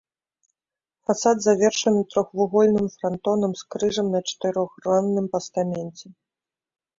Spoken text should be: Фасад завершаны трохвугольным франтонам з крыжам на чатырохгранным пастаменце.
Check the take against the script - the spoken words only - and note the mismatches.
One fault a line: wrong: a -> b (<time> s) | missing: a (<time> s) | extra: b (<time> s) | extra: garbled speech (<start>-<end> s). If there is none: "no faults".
no faults